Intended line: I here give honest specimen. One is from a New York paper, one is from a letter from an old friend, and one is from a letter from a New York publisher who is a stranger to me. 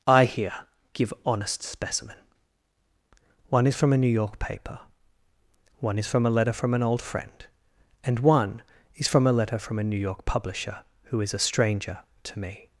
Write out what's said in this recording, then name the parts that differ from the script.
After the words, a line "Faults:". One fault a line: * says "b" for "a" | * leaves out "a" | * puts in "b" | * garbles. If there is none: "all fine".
I here give honest specimen. One is from a New York paper, one is from a letter from an old friend, and one is from a letter from a New York publisher who is a stranger to me.
Faults:
all fine